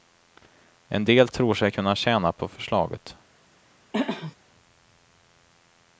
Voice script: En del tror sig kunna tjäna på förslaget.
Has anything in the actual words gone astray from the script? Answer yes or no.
no